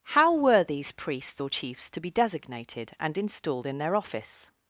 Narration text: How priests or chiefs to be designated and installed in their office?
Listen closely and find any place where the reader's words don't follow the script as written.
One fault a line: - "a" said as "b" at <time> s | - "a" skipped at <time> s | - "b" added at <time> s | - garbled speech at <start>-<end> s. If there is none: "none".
- "were these" added at 0.3 s